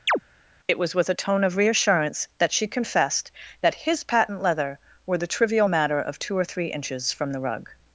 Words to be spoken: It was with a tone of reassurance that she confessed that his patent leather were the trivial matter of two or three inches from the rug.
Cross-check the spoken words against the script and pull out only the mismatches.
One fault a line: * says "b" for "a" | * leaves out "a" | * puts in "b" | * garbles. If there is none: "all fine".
all fine